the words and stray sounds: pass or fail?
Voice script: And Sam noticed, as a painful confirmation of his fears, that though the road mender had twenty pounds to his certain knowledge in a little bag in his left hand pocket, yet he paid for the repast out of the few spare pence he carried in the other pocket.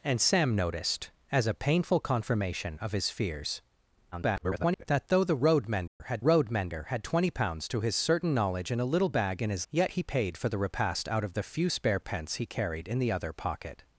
fail